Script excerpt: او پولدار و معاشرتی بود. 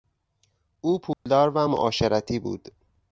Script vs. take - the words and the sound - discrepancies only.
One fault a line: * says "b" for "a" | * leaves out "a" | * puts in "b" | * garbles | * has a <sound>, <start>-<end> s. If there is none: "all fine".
* has a dropout, 1.1-1.3 s